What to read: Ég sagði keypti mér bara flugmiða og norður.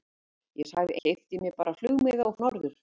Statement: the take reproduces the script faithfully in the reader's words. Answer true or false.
true